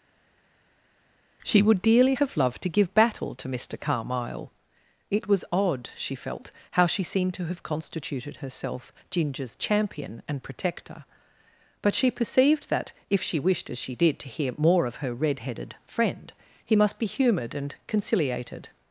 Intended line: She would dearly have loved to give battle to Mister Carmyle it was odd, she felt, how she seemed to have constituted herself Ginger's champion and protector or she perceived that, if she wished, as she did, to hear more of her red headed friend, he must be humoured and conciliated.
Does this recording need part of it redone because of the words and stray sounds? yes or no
yes